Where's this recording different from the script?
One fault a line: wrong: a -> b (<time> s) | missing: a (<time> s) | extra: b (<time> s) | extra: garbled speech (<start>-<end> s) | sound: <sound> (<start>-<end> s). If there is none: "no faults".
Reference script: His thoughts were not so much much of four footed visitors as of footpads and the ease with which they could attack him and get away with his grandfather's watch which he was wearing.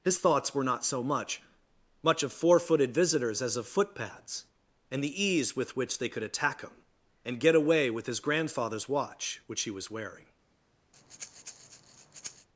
sound: breath (10.9-12.5 s)